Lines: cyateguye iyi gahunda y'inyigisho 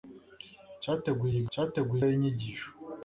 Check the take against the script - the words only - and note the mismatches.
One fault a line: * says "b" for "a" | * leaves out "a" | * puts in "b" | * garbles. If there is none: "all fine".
* says "cyateguye" for "gahunda"